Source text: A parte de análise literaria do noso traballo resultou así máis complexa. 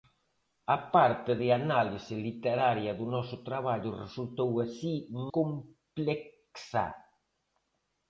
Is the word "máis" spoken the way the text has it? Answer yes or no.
no